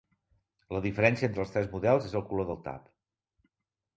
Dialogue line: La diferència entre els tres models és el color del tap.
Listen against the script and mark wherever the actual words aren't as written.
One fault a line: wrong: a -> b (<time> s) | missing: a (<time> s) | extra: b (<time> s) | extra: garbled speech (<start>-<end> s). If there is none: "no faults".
no faults